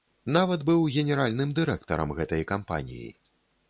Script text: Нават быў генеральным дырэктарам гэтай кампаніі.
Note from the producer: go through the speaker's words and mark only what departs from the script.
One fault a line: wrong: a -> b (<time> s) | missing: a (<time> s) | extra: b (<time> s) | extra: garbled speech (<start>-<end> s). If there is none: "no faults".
no faults